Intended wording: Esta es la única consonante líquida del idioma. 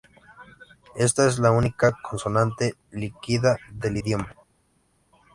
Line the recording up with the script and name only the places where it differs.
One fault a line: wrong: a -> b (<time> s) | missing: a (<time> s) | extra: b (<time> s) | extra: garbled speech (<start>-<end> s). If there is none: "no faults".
no faults